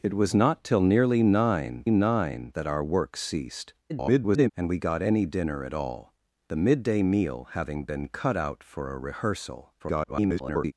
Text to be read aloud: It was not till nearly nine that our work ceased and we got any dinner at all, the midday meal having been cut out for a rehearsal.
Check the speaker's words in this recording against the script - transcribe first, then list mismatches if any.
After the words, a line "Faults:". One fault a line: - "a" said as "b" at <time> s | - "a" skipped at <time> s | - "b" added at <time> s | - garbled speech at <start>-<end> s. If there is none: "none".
It was not till nearly nine nine that our work ceased [garbled] and we got any dinner at all, the midday meal having been cut out for a rehearsal. [garbled]
Faults:
- "nine" added at 1.9 s
- garbled speech at 3.9-4.5 s
- garbled speech at 9.8-10.7 s